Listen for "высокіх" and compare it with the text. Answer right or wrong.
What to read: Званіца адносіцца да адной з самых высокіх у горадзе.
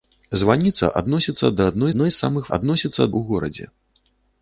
wrong